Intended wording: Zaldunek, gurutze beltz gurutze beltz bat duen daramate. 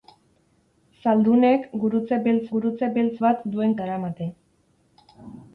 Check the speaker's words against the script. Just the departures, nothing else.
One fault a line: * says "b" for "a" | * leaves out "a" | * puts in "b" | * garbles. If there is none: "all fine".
all fine